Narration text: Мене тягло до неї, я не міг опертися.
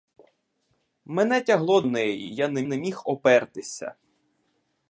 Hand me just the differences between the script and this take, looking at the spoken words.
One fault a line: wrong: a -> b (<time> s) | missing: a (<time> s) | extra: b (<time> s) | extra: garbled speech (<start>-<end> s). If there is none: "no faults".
missing: до (1.8 s)
extra: не (2.6 s)